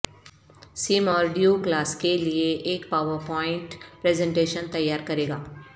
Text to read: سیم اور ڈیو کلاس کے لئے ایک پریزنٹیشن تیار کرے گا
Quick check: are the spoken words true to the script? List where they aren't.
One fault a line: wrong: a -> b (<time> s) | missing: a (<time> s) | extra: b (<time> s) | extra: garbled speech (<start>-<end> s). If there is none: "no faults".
extra: پاورپوائنٹ (2.9 s)